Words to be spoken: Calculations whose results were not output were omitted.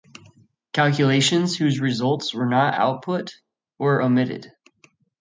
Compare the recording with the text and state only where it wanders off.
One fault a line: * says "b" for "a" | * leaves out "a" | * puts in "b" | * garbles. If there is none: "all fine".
all fine